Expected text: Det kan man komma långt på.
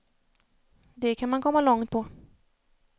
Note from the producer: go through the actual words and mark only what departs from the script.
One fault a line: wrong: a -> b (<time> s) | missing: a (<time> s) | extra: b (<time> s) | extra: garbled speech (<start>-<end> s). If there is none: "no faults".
no faults